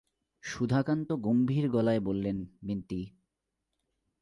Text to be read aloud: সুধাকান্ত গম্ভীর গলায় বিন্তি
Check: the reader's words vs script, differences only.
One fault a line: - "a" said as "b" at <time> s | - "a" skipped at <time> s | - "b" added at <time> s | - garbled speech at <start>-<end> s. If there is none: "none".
- "বললেন" added at 2.0 s